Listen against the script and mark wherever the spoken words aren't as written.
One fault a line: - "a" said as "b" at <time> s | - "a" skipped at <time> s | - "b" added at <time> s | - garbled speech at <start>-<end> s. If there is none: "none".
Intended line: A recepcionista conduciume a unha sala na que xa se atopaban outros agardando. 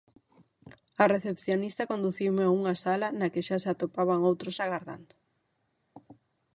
none